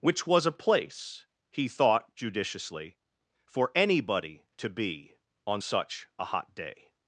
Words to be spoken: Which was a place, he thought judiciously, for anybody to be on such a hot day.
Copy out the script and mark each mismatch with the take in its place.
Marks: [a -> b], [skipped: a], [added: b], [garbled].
Which was a place, he thought judiciously, for anybody to be on such a hot day.